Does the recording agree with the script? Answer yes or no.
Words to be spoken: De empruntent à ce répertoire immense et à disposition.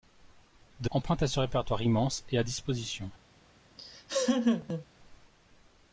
yes